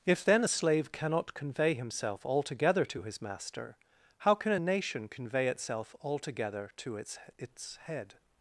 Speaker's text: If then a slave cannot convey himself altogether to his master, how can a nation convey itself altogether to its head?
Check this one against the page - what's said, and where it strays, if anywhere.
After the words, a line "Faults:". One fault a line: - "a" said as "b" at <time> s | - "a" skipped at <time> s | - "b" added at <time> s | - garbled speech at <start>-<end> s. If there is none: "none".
If then a slave cannot convey himself altogether to his master, how can a nation convey itself altogether to its its head?
Faults:
- "its" added at 7.4 s